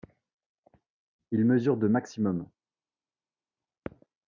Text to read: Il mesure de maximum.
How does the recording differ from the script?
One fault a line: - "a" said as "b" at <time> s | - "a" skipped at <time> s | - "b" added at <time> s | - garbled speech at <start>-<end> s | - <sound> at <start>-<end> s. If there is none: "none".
none